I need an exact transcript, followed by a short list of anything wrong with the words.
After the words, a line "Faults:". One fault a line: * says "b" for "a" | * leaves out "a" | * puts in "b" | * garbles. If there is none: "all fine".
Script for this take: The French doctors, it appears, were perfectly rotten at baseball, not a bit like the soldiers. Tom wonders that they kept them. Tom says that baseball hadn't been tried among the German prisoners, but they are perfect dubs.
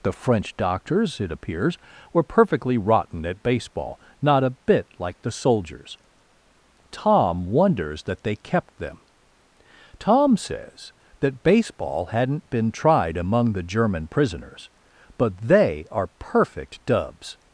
The French doctors, it appears, were perfectly rotten at baseball, not a bit like the soldiers. Tom wonders that they kept them. Tom says that baseball hadn't been tried among the German prisoners, but they are perfect dubs.
Faults:
all fine